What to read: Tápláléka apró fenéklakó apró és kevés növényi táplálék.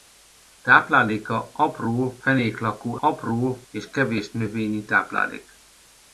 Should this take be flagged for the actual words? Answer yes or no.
no